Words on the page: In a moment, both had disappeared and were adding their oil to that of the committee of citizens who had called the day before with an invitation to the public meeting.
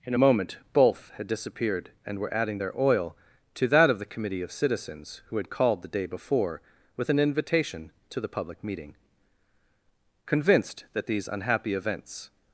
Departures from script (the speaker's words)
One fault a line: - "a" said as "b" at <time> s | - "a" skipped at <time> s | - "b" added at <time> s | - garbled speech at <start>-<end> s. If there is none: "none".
- "Convinced that these unhappy events" added at 10.3 s